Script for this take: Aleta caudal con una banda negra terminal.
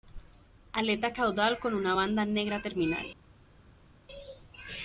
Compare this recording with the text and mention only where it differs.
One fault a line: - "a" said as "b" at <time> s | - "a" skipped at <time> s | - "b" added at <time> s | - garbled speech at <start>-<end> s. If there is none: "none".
none